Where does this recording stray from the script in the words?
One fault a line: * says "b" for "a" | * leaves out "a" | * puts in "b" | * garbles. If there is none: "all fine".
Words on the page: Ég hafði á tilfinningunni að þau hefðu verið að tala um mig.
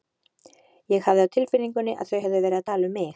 all fine